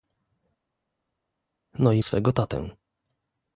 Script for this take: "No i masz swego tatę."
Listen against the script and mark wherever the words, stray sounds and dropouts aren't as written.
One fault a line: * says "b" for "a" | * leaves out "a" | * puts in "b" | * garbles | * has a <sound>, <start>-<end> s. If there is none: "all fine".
* leaves out "masz"